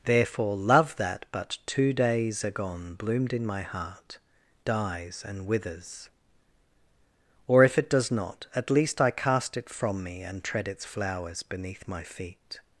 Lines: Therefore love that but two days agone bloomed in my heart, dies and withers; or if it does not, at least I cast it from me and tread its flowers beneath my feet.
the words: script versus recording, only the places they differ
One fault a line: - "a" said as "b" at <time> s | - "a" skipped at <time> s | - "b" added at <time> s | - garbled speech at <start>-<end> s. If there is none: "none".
none